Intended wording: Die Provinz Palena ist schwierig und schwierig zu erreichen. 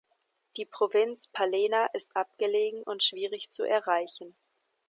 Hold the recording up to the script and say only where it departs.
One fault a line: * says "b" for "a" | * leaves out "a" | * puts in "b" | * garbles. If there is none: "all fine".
* says "abgelegen" for "schwierig"